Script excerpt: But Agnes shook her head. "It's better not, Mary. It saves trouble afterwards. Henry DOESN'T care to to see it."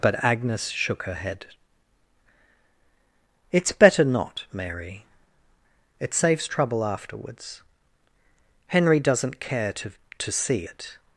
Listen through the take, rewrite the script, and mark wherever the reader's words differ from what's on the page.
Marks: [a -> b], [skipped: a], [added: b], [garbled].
But Agnes shook her head. "It's better not, Mary. It saves trouble afterwards. Henry DOESN'T care to to see it."